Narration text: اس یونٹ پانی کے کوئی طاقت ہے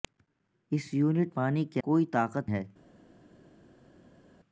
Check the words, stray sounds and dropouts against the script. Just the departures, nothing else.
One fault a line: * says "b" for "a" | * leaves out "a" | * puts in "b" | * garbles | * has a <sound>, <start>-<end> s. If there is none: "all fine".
all fine